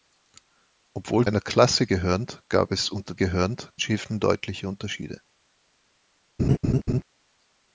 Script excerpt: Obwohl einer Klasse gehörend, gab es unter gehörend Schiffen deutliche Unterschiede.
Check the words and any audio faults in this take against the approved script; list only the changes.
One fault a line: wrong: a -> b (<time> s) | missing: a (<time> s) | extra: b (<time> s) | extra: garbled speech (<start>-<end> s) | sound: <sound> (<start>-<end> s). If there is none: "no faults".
sound: laugh (6.4-7.0 s)